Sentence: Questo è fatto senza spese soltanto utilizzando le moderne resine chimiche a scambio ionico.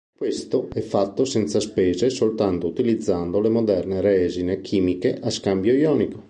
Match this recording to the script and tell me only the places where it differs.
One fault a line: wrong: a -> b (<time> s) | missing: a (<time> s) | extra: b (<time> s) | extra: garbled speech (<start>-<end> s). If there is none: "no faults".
no faults